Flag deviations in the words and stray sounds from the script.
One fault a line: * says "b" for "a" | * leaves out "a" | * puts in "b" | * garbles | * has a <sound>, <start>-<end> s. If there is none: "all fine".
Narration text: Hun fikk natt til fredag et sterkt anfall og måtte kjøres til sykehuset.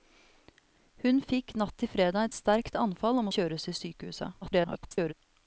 * leaves out "et"
* leaves out "måtte"
* garbles